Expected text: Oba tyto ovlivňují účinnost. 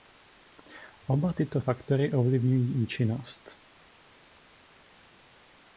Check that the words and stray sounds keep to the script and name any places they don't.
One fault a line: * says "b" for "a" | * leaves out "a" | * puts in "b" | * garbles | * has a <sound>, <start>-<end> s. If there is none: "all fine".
* puts in "faktory"